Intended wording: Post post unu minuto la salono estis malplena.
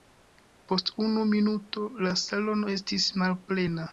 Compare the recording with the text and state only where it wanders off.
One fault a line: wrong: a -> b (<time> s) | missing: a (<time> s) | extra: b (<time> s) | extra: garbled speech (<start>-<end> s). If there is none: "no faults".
missing: post (0.9 s)